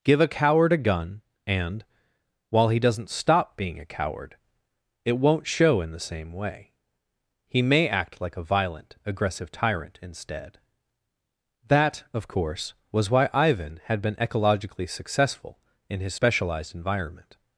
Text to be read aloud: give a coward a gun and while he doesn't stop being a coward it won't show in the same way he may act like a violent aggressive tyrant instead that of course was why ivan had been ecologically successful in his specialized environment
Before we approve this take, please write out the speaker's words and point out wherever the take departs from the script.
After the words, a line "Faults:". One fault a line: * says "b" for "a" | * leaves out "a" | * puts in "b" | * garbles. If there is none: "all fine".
give a coward a gun and while he doesn't stop being a coward it won't show in the same way he may act like a violent aggressive tyrant instead that of course was why ivan had been ecologically successful in his specialized environment
Faults:
all fine